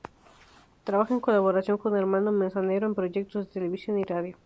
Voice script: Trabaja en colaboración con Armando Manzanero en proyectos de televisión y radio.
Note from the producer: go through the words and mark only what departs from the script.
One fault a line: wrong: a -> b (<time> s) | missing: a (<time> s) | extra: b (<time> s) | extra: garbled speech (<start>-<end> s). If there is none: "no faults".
no faults